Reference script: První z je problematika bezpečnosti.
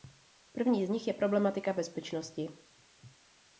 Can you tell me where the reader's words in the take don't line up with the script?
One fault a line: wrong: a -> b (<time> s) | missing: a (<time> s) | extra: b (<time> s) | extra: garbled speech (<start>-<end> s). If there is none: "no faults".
extra: nich (0.9 s)